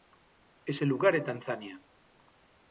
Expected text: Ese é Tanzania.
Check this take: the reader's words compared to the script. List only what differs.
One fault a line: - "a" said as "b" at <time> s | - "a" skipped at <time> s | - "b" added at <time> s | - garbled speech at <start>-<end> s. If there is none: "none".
- "lugar" added at 0.9 s